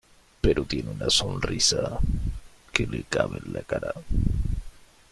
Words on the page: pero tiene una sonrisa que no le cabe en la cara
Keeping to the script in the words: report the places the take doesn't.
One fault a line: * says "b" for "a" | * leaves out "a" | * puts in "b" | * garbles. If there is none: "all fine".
* leaves out "no"